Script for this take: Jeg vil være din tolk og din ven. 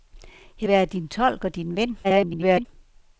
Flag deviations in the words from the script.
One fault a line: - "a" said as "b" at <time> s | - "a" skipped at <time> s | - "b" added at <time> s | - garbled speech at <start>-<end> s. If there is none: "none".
- "vil" skipped at 0.7 s
- garbled speech at 2.0-2.7 s